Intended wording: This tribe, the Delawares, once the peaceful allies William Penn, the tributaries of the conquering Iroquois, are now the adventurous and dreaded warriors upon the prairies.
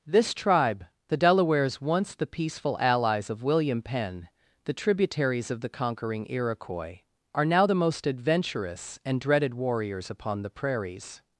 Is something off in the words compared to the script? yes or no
yes